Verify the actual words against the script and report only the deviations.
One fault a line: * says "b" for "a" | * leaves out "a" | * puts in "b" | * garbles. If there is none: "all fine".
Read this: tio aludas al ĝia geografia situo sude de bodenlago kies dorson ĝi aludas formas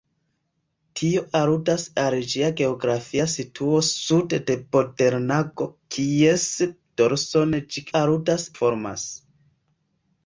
all fine